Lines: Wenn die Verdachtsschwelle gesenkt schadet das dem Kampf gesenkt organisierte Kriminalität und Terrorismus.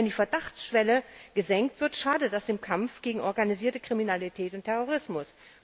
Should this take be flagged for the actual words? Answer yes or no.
yes